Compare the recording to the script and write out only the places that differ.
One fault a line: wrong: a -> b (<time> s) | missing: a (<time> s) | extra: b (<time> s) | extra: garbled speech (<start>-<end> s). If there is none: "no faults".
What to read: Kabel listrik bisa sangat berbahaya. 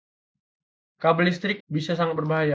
no faults